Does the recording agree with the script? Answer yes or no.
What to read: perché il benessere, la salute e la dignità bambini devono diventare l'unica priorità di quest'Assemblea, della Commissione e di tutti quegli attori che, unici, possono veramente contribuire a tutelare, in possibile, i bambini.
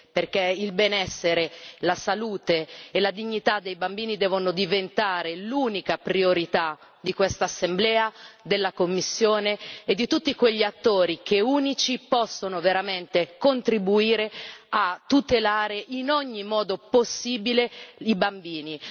no